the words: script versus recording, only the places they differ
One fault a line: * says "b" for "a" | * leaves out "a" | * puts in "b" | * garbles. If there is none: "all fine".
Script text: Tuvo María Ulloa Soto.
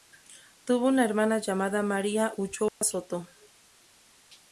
* puts in "una hermana llamada"